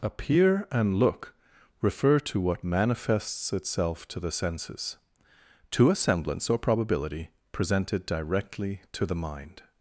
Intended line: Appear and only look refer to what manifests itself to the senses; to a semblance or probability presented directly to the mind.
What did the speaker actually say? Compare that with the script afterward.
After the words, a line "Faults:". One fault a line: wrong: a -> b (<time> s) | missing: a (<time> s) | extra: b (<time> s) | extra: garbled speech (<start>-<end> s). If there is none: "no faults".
Appear and look refer to what manifests itself to the senses; to a semblance or probability presented directly to the mind.
Faults:
missing: only (0.9 s)